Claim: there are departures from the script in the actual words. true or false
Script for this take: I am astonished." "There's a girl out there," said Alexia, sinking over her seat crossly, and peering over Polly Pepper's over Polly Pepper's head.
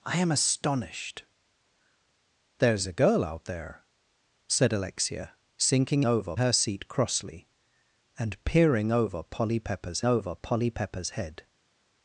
false